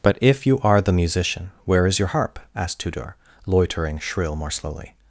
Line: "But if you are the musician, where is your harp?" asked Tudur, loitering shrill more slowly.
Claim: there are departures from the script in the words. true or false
false